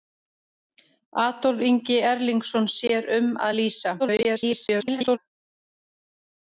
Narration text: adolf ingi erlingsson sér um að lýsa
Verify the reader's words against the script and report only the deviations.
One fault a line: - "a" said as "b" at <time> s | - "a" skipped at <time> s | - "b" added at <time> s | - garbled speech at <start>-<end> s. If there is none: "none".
- garbled speech at 4.0-5.2 s